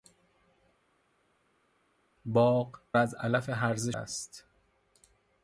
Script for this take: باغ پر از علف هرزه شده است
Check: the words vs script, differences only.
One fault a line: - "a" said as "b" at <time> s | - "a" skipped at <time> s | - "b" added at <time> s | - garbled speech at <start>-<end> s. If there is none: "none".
- "پر" skipped at 2.8 s
- "شده" skipped at 3.9 s